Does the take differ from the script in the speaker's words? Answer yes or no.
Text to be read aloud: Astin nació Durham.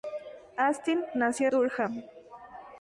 no